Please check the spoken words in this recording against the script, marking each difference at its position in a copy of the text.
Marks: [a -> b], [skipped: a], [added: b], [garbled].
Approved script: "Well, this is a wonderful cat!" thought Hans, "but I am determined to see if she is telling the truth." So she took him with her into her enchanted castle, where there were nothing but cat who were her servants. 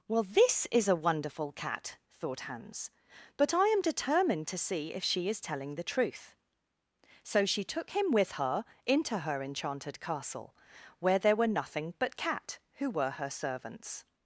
"Well, this is a wonderful cat!" thought Hans, "but I am determined to see if she is telling the truth." So she took him with her into her enchanted castle, where there were nothing but cat who were her servants.